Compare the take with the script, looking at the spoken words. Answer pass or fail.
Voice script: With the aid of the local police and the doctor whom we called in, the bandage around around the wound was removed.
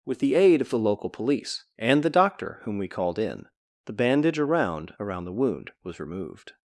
pass